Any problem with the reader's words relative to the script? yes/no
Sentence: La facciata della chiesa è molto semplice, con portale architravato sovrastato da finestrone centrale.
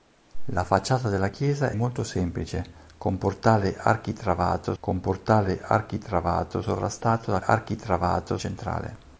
yes